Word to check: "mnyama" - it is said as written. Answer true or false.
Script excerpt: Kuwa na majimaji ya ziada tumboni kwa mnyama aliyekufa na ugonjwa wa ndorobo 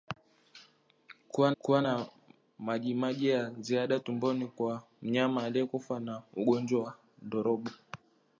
true